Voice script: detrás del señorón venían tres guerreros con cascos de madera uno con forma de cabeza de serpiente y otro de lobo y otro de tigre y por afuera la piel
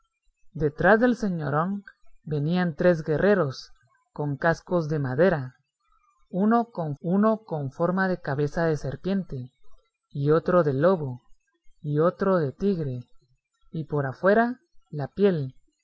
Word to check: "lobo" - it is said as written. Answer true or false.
true